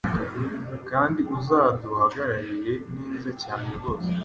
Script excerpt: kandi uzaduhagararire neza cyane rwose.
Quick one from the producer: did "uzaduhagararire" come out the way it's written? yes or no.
yes